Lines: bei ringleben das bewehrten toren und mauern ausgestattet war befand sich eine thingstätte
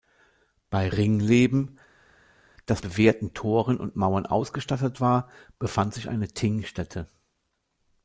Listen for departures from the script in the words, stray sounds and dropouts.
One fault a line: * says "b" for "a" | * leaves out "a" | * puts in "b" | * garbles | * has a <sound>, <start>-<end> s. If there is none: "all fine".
all fine